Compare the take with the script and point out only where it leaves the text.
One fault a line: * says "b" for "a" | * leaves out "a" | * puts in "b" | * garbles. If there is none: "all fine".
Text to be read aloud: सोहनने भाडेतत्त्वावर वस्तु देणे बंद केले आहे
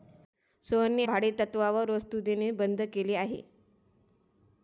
all fine